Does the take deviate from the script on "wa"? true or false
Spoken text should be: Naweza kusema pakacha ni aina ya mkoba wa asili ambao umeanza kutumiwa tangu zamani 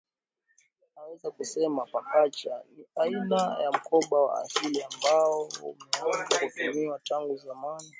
false